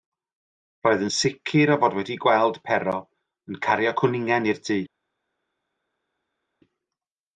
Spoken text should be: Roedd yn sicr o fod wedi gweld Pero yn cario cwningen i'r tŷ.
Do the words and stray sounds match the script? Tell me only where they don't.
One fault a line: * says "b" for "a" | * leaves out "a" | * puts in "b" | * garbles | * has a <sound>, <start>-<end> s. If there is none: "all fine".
all fine